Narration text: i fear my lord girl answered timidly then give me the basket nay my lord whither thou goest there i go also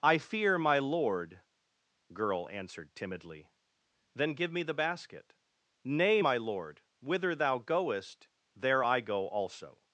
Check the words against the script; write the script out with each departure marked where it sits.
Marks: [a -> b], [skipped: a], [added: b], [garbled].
i fear my lord girl answered timidly then give me the basket nay my lord whither thou goest there i go also